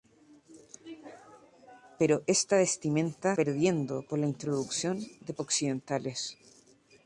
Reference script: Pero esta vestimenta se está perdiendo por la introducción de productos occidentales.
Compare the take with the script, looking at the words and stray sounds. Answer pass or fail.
fail